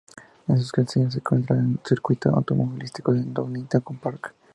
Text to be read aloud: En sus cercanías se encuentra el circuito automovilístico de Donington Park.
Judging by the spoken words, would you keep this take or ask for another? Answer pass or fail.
pass